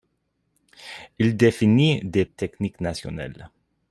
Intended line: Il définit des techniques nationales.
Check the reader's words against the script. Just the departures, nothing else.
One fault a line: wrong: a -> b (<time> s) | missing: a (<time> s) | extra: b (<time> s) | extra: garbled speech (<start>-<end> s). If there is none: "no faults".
no faults